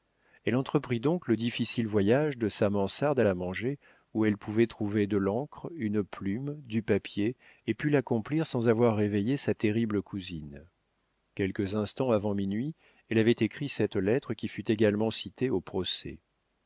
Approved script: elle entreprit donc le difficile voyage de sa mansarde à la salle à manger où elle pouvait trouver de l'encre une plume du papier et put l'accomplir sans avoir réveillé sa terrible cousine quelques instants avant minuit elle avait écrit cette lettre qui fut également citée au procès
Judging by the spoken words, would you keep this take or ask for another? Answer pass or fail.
fail